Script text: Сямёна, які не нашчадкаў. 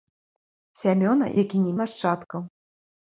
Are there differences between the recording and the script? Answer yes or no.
no